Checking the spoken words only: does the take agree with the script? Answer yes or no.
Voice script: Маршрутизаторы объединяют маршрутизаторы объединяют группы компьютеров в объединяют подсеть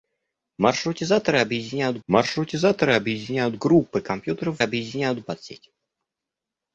yes